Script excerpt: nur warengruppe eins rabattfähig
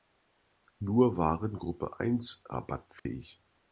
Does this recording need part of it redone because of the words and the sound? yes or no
yes